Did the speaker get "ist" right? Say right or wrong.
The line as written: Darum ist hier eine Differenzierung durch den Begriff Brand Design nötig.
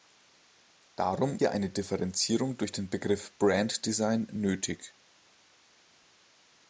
wrong